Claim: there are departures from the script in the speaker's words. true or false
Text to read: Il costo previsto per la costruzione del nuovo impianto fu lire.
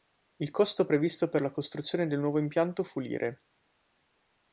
false